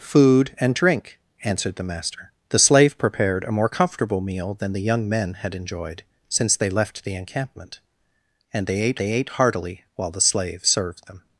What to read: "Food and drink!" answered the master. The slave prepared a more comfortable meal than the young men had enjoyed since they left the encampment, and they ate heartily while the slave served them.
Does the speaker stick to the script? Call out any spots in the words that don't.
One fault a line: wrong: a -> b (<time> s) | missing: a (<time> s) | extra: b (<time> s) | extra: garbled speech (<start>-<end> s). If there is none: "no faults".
extra: they ate (9.0 s)